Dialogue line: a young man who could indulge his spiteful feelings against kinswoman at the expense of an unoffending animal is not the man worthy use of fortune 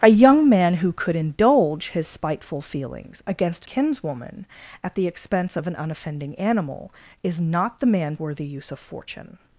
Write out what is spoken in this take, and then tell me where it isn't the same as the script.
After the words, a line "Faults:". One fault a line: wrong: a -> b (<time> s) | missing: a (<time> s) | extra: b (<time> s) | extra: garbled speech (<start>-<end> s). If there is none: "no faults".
a young man who could indulge his spiteful feelings against kinswoman at the expense of an unoffending animal is not the man worthy use of fortune
Faults:
no faults